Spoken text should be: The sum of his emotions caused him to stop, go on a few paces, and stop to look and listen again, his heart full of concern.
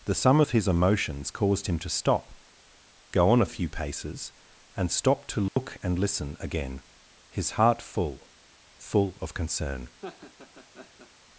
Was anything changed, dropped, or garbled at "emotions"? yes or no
no